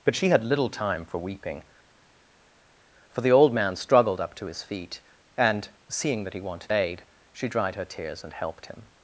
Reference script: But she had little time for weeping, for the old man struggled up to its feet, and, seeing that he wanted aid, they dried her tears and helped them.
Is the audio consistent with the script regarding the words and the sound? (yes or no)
no